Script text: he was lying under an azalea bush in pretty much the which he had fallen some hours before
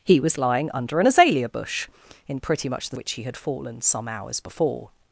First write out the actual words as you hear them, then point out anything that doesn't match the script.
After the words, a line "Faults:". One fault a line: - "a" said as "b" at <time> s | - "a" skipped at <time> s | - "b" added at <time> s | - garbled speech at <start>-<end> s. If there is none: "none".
he was lying under an azalea bush in pretty much the which he had fallen some hours before
Faults:
none